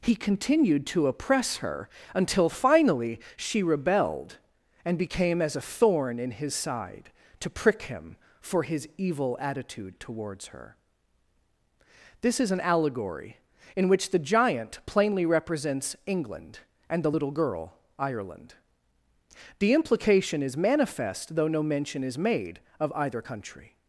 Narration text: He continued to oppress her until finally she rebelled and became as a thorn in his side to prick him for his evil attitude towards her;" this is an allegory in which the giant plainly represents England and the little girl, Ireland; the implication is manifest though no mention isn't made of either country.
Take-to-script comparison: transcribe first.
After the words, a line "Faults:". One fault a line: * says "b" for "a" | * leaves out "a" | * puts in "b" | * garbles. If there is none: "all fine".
He continued to oppress her until finally she rebelled and became as a thorn in his side to prick him for his evil attitude towards her;" this is an allegory in which the giant plainly represents England and the little girl, Ireland; the implication is manifest though no mention is made of either country.
Faults:
* says "is" for "isn't"